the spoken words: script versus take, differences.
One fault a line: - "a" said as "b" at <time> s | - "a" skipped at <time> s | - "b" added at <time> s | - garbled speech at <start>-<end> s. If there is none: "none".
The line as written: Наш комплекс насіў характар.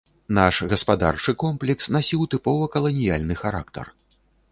- "гаспадарчы" added at 0.7 s
- "тыпова каланіяльны" added at 2.3 s